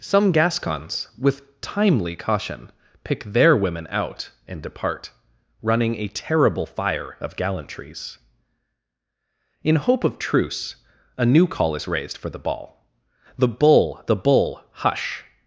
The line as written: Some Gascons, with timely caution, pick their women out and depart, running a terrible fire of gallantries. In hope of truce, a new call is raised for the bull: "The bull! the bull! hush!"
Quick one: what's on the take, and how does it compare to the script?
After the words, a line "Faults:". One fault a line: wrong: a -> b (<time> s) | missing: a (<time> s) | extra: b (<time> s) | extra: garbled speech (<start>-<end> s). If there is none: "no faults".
Some Gascons, with timely caution, pick their women out and depart, running a terrible fire of gallantries. In hope of truce, a new call is raised for the ball: "The bull! the bull! hush!"
Faults:
wrong: bull -> ball (12.4 s)